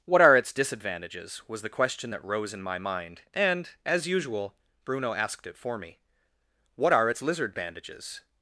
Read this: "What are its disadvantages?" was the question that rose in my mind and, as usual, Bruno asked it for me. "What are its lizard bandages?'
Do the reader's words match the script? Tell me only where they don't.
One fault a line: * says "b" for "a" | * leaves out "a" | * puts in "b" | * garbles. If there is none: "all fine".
all fine